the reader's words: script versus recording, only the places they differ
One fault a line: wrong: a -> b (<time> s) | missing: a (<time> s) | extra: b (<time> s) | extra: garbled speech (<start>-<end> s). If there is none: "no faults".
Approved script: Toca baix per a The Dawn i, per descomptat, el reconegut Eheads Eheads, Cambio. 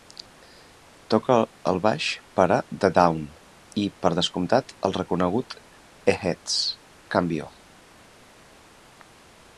extra: el (1.7 s)
missing: Eheads (6.6 s)